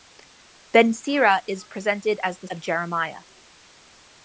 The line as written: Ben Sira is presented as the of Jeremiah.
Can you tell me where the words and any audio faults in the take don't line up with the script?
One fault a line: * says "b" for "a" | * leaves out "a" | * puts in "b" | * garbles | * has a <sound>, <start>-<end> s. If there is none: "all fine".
all fine